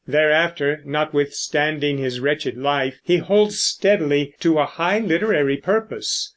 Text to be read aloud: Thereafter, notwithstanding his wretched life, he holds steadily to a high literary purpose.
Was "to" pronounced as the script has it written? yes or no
yes